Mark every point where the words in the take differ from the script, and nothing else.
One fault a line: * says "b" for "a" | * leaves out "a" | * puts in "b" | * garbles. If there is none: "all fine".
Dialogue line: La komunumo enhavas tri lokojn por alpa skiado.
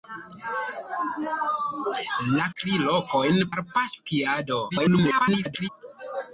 * leaves out "komunumo enhavas"
* leaves out "por"
* garbles